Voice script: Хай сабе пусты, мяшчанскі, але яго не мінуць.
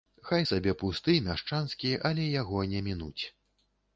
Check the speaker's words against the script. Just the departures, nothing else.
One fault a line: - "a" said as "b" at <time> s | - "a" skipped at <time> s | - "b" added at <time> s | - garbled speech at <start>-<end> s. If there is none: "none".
none